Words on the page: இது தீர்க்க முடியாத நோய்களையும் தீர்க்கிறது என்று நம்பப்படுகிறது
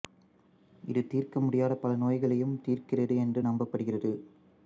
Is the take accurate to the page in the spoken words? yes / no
no